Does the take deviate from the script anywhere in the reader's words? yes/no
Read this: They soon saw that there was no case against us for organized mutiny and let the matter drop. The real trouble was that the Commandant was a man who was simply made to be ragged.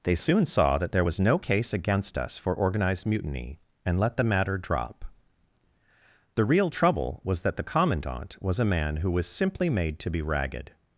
no